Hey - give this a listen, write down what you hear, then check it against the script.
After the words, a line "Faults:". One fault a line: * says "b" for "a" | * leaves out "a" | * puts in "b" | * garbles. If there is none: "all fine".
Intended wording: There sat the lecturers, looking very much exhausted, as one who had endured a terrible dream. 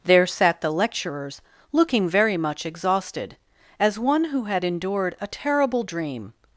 There sat the lecturers, looking very much exhausted, as one who had endured a terrible dream.
Faults:
all fine